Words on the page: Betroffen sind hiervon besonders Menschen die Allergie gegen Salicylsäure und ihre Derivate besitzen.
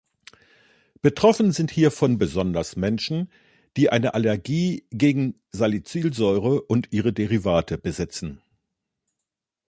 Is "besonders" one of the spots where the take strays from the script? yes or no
no